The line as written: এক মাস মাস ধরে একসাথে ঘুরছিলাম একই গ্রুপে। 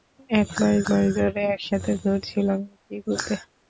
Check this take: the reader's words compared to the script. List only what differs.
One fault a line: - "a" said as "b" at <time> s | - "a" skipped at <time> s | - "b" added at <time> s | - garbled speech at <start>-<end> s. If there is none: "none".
none